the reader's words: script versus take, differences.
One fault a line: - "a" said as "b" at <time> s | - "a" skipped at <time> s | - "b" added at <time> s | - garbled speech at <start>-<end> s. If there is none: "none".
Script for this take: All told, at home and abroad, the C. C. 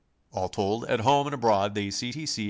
- "T" added at 2.1 s